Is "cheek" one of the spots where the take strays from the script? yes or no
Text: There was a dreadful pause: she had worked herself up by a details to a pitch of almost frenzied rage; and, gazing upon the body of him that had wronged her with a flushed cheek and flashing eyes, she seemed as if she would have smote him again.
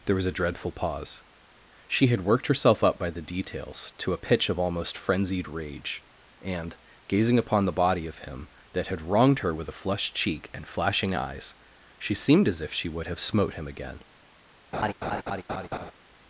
no